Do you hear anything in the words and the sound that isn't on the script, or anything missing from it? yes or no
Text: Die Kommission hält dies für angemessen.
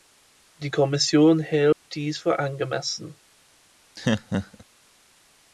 yes